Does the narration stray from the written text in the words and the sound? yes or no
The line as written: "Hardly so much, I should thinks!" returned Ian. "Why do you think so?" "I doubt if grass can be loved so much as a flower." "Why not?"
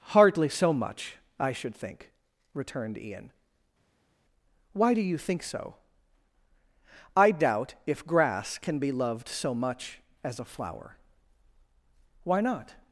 yes